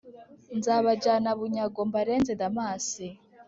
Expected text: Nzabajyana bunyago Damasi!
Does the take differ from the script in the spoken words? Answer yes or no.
yes